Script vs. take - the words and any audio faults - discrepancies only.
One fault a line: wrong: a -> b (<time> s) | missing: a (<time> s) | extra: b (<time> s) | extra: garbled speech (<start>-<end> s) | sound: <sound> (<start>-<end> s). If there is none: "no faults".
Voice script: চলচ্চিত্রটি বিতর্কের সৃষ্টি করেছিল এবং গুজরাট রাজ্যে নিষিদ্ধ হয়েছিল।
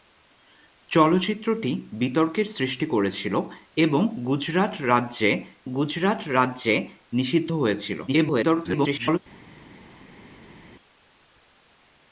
extra: গুজরাট রাজ্যে (5.7 s)
extra: garbled speech (8.1-9.2 s)